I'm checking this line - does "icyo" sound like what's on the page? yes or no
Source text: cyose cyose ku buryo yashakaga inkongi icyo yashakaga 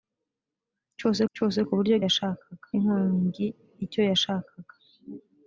yes